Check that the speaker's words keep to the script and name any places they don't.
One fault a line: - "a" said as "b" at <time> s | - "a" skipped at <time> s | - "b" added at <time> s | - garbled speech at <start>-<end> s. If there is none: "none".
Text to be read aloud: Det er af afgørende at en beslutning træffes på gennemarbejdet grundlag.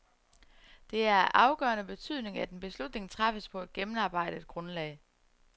- "betydning" added at 1.8 s
- "et" added at 3.6 s